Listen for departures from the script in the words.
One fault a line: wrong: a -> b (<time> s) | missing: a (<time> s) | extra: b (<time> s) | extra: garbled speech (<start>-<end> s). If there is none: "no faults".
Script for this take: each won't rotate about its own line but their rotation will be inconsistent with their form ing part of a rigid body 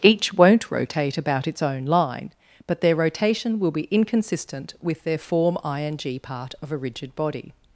no faults